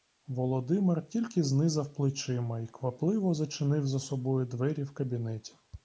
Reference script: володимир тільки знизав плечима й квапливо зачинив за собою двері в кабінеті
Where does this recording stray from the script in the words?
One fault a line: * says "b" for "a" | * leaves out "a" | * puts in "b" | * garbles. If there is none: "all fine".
all fine